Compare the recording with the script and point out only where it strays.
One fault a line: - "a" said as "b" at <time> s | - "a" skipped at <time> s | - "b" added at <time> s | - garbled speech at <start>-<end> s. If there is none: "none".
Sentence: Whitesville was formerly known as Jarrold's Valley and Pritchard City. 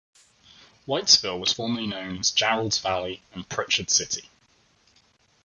none